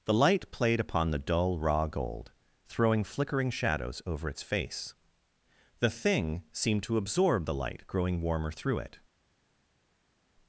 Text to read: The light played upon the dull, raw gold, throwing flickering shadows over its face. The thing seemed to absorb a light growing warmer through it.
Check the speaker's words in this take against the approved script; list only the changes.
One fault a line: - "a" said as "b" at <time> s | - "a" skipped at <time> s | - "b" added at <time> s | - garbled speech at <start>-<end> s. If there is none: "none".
- "a" said as "the" at 7.4 s